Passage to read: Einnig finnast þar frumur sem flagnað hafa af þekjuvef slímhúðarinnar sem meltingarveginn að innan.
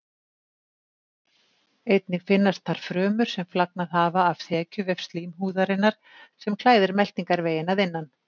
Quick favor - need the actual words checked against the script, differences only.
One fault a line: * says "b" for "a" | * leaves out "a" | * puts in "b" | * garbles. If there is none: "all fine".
* puts in "klæðir"